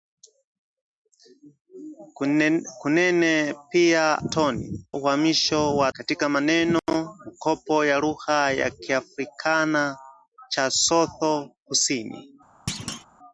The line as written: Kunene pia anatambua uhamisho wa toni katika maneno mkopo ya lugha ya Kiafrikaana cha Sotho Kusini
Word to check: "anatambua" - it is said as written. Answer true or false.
false